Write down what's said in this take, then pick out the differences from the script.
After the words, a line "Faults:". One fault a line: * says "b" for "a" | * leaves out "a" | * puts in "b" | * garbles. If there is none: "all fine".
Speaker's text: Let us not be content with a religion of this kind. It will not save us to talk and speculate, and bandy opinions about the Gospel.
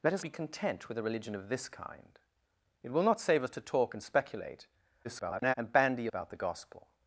Let us be content with a religion of this kind. It will not save us to talk and speculate, [garbled] and bandy about the Gospel.
Faults:
* leaves out "not"
* garbles
* leaves out "opinions"